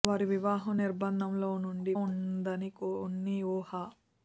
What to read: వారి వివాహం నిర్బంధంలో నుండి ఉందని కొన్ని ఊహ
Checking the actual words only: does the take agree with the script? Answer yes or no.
yes